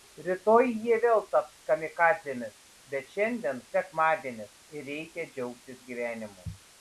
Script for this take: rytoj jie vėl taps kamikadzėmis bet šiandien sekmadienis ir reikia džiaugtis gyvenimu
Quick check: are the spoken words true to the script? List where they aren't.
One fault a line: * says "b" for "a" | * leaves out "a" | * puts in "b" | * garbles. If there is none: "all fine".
all fine